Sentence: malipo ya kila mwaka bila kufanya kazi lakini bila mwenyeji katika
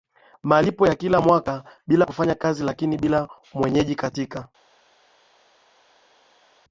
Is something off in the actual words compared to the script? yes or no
no